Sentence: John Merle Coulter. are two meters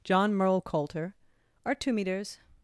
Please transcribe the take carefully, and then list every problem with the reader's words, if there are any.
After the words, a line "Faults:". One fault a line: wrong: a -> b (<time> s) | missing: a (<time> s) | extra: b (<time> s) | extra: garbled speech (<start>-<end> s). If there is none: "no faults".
John Merle Coulter. are two meters
Faults:
no faults